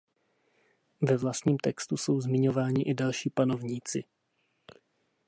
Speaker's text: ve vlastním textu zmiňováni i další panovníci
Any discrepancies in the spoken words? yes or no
yes